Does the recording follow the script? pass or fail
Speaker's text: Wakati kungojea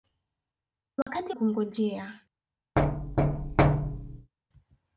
pass